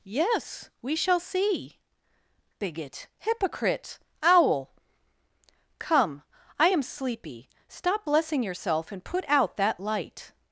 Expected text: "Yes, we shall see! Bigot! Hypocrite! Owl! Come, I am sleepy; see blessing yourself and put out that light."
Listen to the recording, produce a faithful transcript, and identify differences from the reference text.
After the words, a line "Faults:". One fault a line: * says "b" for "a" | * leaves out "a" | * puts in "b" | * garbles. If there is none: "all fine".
"Yes, we shall see! Bigot! Hypocrite! Owl! Come, I am sleepy; stop blessing yourself and put out that light."
Faults:
* says "stop" for "see"